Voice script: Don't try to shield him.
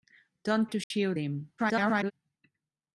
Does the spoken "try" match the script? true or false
false